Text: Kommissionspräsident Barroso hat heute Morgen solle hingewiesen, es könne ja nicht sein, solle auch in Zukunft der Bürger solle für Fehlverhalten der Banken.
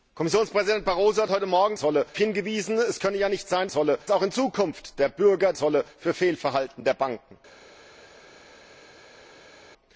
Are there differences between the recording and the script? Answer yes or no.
no